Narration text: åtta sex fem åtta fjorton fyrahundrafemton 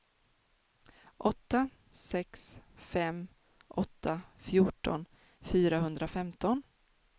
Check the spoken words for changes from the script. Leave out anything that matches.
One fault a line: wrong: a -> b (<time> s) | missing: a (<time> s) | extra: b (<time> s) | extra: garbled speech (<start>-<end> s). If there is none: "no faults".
no faults